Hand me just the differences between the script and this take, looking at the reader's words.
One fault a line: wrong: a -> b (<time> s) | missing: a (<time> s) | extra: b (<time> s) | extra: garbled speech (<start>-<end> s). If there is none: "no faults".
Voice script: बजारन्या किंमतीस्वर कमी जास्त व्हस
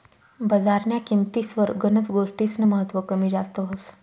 extra: गनच गोष्टीस्नं महत्व (1.8 s)